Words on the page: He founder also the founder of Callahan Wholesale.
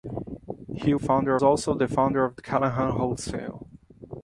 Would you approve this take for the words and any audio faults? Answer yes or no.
yes